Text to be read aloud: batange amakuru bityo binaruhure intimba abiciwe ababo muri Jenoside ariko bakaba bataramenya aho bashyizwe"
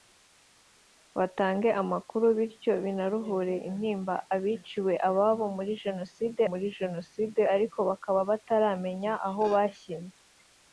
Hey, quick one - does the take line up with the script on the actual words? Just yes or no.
no